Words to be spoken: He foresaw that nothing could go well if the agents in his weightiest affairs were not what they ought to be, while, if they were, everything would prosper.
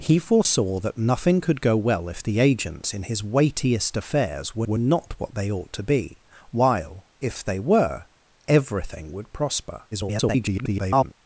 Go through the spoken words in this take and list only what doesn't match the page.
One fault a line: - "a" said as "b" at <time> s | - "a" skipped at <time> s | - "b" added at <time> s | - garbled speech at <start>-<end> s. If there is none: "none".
- "were" added at 4.7 s
- garbled speech at 9.9-11.1 s